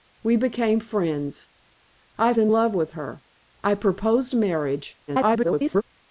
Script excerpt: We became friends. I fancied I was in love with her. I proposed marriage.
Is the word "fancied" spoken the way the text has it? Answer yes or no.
no